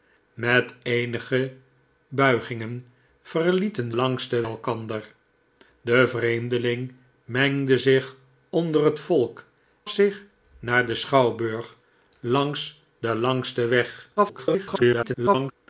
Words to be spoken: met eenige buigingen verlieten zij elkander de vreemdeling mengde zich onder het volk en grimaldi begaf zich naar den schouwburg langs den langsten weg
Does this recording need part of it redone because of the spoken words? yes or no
yes